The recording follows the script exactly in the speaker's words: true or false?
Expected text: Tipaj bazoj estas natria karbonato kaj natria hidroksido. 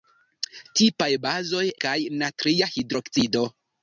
false